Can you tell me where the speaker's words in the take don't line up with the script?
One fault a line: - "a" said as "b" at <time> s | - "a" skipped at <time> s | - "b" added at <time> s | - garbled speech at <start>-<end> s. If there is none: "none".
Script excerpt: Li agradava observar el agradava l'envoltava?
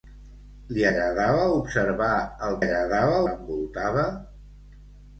none